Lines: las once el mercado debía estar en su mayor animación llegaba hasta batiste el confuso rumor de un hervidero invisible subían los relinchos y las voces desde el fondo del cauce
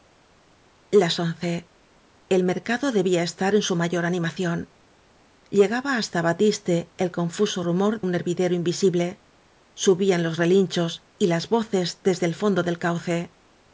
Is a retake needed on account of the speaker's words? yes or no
yes